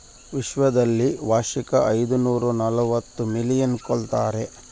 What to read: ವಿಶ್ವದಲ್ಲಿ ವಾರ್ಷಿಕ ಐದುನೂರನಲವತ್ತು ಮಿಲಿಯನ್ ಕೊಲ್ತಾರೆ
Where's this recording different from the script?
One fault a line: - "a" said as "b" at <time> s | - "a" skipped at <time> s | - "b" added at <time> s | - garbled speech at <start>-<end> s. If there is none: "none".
none